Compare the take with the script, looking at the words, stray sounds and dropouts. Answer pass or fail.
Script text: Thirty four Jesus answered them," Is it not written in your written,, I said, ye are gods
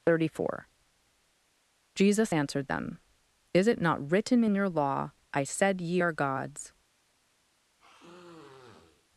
fail